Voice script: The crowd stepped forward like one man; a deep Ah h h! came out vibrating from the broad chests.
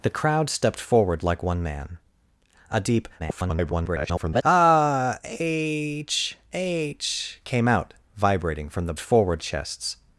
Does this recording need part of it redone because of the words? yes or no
yes